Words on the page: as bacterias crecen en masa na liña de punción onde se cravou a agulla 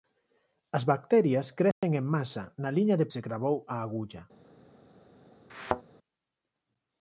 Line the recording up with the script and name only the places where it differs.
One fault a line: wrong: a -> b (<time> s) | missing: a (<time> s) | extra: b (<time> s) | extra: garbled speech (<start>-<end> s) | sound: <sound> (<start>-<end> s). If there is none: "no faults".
sound: dropout (1.7-1.8 s)
missing: punción onde (3.1 s)
sound: thud (5.5-5.8 s)